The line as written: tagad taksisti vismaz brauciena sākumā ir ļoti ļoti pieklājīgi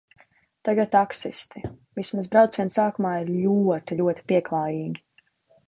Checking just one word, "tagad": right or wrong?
right